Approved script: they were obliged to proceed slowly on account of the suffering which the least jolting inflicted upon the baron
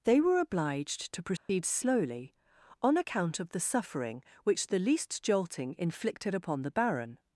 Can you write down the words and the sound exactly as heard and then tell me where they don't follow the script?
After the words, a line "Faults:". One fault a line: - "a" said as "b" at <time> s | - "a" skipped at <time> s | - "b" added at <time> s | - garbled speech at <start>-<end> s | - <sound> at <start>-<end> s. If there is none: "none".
they were obliged to proceed slowly on account of the suffering which the least jolting inflicted upon the baron
Faults:
- dropout at 1.4-1.5 s